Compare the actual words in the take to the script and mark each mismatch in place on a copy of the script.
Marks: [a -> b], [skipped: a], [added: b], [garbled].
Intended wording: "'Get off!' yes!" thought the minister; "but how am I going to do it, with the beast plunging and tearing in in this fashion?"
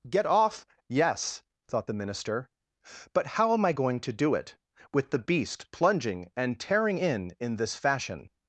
"'Get off!' yes!" thought the minister; "but how am I going to do it, with the beast plunging and tearing in in this fashion?"